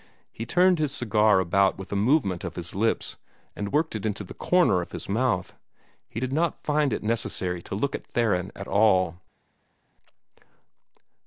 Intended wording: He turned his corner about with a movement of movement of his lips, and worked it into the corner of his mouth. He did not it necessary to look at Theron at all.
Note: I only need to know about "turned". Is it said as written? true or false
true